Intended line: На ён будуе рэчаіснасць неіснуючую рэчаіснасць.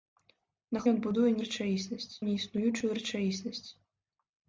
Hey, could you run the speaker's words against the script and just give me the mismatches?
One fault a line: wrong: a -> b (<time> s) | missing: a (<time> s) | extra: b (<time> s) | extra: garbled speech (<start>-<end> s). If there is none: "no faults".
no faults